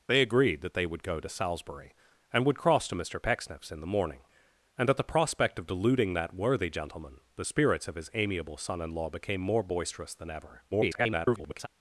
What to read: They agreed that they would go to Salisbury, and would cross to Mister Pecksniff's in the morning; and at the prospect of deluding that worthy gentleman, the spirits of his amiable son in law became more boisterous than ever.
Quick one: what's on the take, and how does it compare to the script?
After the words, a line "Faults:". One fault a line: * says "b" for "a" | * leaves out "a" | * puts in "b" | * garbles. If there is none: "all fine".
They agreed that they would go to Salisbury, and would cross to Mister Pecksniff's in the morning; and at the prospect of deluding that worthy gentleman, the spirits of his amiable son in law became more boisterous than ever. [garbled]
Faults:
* garbles